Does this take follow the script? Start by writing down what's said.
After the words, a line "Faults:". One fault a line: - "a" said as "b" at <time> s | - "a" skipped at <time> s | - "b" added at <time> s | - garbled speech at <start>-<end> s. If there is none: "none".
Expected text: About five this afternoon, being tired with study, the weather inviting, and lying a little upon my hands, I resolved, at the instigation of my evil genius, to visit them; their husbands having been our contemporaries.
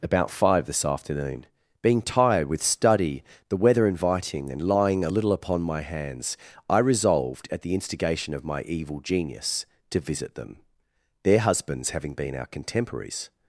About five this afternoon, being tired with study, the weather inviting, and lying a little upon my hands, I resolved, at the instigation of my evil genius, to visit them; their husbands having been our contemporaries.
Faults:
none